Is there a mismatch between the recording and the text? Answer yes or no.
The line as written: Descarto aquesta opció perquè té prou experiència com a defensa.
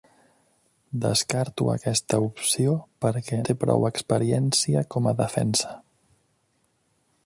no